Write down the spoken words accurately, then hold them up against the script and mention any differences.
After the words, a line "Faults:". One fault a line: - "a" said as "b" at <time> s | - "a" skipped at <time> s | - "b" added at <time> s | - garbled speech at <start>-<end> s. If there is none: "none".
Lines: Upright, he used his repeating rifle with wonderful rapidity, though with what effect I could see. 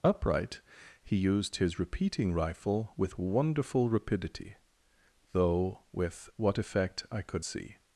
Upright, he used his repeating rifle with wonderful rapidity, though with what effect I could see.
Faults:
none